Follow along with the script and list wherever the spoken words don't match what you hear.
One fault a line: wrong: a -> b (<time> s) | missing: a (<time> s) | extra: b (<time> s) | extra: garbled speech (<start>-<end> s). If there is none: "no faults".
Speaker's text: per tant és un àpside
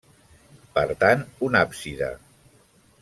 missing: és (1.3 s)